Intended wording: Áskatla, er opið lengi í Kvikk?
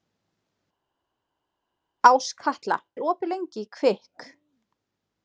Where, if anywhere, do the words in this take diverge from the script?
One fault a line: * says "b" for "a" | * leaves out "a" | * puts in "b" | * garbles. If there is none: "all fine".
all fine